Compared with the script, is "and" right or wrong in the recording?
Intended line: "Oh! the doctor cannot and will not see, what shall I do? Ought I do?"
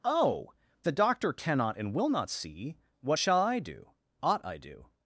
right